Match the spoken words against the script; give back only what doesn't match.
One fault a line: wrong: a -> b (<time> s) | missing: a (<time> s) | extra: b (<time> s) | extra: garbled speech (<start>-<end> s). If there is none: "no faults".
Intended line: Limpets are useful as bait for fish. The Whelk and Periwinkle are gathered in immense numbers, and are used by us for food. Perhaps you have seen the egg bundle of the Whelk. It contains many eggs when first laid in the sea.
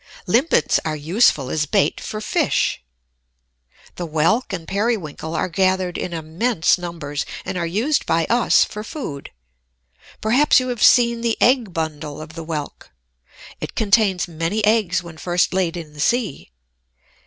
no faults